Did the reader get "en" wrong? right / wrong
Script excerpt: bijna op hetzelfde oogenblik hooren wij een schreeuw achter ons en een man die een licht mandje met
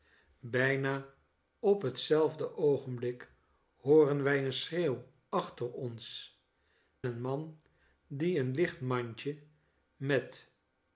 wrong